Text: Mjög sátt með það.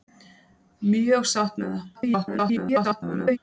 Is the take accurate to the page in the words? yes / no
no